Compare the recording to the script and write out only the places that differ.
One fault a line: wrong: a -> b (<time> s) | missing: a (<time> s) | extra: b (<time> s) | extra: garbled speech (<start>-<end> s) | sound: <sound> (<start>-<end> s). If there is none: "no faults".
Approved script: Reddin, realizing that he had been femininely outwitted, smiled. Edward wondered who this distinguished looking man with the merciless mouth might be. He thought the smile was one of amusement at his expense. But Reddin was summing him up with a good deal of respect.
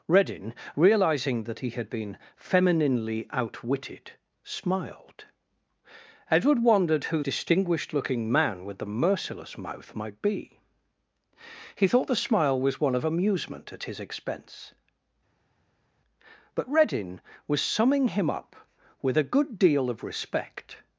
missing: this (7.2 s)